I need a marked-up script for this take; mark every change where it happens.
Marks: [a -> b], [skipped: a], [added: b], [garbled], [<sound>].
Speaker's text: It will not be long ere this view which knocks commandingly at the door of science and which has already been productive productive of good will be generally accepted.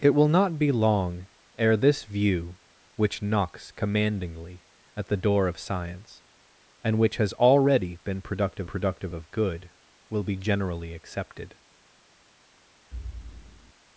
It will not be long ere this view which knocks commandingly at the door of science and which has already been productive productive of good will be generally accepted. [thud]